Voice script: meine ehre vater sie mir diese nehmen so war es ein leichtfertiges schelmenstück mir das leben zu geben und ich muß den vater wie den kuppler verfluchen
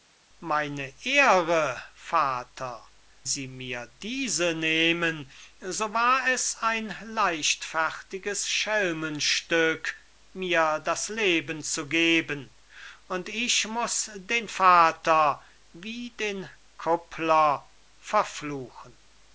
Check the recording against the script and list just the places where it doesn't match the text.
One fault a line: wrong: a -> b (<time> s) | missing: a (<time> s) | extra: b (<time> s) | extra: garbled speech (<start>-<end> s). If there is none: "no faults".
no faults